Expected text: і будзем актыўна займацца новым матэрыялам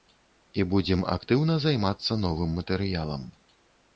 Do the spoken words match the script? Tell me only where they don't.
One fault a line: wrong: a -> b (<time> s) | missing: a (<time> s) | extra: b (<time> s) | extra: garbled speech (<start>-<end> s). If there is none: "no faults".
no faults